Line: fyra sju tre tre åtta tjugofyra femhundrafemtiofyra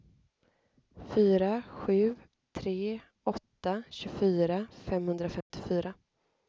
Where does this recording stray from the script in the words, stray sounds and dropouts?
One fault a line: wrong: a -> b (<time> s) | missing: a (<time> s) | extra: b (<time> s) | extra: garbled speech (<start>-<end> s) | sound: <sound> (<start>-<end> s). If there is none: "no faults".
missing: tre (3.0 s)
sound: dropout (5.4-5.5 s)